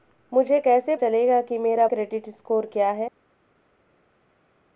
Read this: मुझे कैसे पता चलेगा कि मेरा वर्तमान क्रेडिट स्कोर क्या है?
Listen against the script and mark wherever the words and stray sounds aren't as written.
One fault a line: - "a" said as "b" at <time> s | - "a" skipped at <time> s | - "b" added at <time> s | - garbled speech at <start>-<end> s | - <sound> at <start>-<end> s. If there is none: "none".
- "पता" skipped at 0.9 s
- "वर्तमान" skipped at 1.9 s